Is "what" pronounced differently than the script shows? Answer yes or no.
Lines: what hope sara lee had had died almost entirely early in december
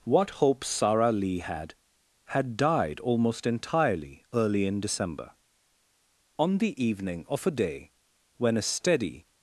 no